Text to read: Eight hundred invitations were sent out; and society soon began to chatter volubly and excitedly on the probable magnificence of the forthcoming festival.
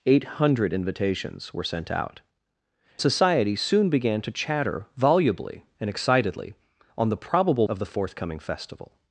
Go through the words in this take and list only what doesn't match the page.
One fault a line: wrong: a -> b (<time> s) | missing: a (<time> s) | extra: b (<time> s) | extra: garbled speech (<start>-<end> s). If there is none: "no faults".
missing: and (2.2 s)
missing: magnificence (7.7 s)